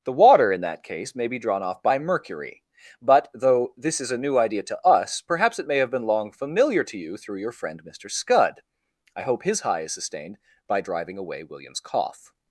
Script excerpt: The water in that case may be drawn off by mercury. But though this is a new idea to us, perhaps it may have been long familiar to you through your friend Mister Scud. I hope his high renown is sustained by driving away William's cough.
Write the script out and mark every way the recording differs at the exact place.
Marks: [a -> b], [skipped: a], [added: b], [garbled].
The water in that case may be drawn off by mercury. But though this is a new idea to us, perhaps it may have been long familiar to you through your friend Mister Scud. I hope his high [skipped: renown] is sustained by driving away William's cough.